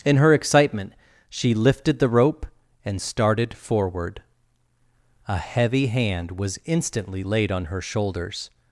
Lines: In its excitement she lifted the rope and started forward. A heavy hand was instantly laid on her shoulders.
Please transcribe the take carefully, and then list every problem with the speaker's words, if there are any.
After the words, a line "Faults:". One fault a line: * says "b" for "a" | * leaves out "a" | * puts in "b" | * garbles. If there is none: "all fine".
In her excitement she lifted the rope and started forward. A heavy hand was instantly laid on her shoulders.
Faults:
* says "her" for "its"